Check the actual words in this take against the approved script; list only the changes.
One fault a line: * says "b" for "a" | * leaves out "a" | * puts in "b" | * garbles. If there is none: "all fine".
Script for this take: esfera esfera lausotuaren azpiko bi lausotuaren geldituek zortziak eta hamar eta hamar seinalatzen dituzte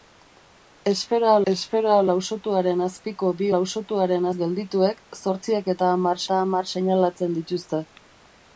all fine